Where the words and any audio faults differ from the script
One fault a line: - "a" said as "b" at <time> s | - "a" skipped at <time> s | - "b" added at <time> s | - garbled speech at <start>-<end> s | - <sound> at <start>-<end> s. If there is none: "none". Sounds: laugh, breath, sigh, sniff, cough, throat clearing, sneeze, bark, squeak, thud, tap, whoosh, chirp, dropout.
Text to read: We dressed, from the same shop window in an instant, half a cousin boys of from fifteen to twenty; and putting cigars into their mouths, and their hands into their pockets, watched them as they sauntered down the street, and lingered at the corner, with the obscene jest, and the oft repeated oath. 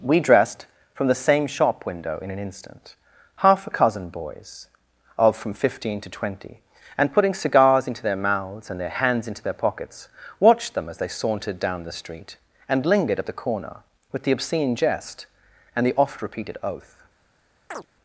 - chirp at 17.7-17.9 s